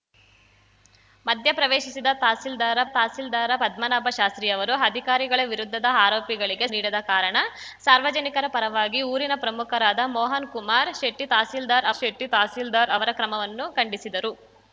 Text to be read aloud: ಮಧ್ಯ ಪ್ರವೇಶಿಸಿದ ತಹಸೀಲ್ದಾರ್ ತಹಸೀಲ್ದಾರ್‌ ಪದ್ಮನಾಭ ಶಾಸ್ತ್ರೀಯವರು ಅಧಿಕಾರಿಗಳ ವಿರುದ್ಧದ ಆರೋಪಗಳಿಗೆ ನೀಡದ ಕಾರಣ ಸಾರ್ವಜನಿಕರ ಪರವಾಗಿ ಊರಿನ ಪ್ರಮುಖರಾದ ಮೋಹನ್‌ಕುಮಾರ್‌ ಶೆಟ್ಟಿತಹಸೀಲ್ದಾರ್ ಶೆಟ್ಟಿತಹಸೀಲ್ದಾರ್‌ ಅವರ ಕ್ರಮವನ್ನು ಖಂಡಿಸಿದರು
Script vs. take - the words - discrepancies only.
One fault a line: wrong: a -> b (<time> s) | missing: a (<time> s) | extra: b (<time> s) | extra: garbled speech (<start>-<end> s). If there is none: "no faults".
no faults